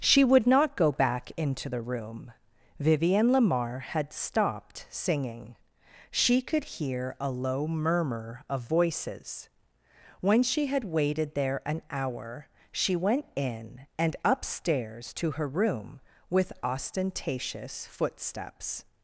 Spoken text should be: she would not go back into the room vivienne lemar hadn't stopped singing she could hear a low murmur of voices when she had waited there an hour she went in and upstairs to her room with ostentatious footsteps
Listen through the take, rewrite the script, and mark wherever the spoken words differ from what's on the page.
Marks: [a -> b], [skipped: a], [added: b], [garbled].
she would not go back into the room vivienne lemar [hadn't -> had] stopped singing she could hear a low murmur of voices when she had waited there an hour she went in and upstairs to her room with ostentatious footsteps